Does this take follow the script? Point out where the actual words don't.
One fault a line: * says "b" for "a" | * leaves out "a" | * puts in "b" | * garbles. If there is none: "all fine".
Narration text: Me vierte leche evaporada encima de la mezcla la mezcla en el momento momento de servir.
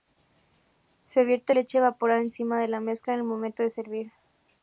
* says "Se" for "Me"
* leaves out "la mezcla"
* leaves out "momento"